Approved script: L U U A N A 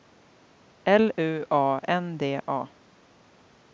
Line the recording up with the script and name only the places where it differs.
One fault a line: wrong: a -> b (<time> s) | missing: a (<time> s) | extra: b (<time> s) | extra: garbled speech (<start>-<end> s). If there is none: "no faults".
missing: U (1.4 s)
extra: D (2.2 s)